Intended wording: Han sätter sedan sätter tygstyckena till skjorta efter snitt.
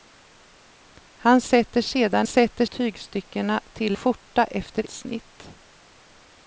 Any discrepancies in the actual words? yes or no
no